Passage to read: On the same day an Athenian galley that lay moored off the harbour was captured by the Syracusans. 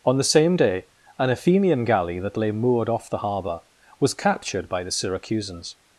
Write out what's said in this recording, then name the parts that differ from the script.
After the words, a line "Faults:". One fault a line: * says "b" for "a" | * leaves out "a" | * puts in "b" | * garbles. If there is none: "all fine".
On the same day an Athenian galley that lay moored off the harbour was captured by the Syracusans.
Faults:
all fine